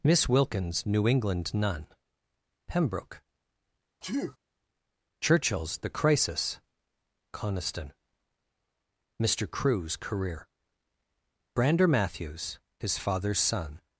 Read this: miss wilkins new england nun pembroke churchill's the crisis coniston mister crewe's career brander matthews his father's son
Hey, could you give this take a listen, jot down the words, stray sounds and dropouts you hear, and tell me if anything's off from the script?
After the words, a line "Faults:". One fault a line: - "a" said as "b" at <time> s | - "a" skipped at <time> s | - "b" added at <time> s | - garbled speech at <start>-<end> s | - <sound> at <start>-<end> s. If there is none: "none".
miss wilkins new england nun pembroke churchill's the crisis coniston mister crewe's career brander matthews his father's son
Faults:
- sneeze at 4.0-4.4 s